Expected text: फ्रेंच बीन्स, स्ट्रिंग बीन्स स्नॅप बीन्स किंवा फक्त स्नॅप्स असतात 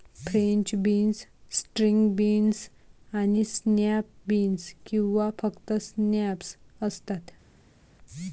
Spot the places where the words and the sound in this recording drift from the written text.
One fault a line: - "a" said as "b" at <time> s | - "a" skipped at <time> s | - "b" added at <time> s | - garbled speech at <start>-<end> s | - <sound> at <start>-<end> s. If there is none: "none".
- "आणि" added at 3.1 s